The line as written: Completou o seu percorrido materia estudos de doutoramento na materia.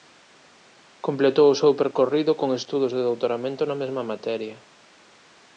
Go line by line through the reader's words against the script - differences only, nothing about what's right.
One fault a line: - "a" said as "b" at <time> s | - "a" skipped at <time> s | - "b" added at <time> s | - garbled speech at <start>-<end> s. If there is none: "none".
- "materia" said as "con" at 2.4 s
- "mesma" added at 3.8 s